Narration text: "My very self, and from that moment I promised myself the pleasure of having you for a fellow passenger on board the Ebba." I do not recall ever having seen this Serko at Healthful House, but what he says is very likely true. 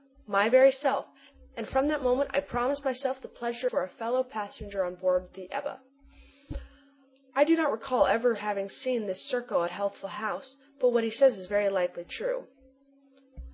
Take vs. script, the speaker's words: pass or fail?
fail